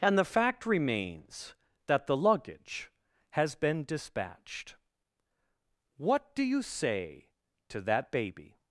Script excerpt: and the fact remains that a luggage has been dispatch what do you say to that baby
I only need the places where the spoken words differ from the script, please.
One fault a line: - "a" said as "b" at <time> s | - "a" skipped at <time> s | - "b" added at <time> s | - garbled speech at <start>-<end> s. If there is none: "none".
- "a" said as "the" at 2.1 s
- "dispatch" said as "dispatched" at 3.9 s